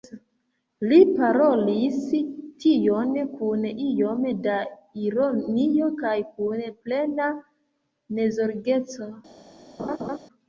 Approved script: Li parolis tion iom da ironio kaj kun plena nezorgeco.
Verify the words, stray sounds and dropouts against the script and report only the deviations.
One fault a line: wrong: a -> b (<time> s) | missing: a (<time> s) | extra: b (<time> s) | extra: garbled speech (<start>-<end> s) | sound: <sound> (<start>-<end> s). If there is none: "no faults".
extra: kun (3.4 s)
sound: laugh (9.8-10.2 s)